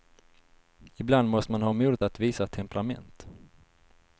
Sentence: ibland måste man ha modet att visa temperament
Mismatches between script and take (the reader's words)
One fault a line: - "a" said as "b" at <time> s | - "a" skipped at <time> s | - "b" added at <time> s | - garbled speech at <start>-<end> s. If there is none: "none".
none